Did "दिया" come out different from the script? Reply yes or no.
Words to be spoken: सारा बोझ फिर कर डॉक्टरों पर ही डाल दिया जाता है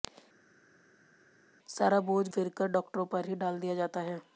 no